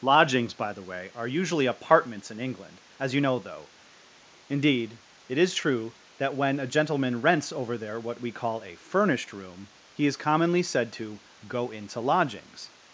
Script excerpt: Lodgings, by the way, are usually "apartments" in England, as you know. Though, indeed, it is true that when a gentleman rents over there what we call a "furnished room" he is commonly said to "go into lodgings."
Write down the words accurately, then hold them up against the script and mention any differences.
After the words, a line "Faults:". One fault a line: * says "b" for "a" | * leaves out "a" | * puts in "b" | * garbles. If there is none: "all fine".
Lodgings, by the way, are usually "apartments" in England, as you know. Though, indeed, it is true that when a gentleman rents over there what we call a "furnished room" he is commonly said to "go into lodgings."
Faults:
all fine